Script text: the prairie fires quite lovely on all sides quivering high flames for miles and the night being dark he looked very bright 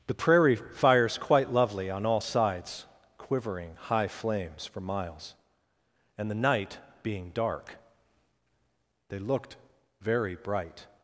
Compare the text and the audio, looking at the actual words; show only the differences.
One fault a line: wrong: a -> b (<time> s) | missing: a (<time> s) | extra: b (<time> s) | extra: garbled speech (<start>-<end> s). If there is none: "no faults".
wrong: he -> they (9.1 s)